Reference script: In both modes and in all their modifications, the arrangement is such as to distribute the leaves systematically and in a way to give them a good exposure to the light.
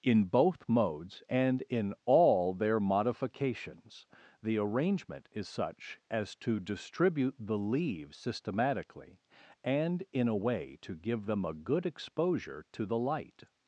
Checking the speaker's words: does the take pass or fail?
pass